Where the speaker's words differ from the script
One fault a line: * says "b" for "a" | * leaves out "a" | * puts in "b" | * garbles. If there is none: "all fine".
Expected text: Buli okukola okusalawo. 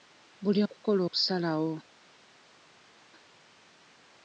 all fine